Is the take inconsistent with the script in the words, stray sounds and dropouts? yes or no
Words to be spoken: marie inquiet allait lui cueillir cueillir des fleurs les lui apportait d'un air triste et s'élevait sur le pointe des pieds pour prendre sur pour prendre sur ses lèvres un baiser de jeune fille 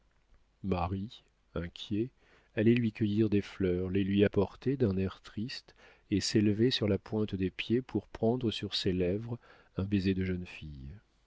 yes